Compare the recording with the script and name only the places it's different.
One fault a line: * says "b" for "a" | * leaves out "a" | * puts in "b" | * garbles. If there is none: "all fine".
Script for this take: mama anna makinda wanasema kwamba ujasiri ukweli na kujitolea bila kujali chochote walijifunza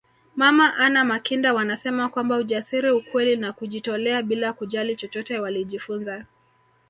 all fine